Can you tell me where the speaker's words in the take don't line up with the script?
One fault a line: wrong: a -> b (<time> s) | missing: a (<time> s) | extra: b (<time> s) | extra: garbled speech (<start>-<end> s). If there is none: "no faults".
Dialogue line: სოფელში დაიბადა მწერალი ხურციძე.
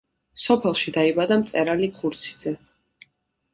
no faults